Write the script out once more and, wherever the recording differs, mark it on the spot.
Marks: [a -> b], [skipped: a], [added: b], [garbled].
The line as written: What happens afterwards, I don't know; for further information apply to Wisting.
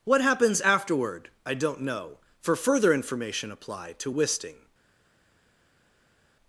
What happens [afterwards, -> afterward] I don't know; for further information apply to Wisting.